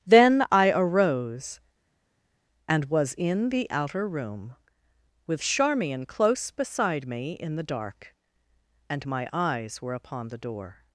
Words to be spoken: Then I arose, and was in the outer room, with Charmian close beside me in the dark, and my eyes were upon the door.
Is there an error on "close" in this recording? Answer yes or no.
no